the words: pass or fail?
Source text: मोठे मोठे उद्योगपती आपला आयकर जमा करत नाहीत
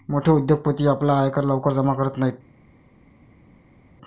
fail